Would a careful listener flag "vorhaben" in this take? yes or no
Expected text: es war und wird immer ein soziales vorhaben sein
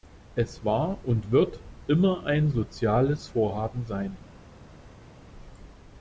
no